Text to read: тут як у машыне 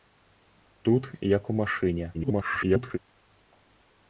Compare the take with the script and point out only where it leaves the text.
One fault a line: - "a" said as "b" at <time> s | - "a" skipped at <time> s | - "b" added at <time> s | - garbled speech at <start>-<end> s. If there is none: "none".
- garbled speech at 2.1-3.0 s